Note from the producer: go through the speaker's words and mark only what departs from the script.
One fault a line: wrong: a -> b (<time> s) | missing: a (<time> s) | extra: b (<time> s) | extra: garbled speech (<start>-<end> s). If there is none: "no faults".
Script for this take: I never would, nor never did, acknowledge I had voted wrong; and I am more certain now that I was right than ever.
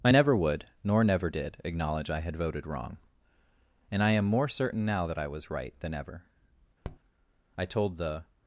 extra: I told the (7.6 s)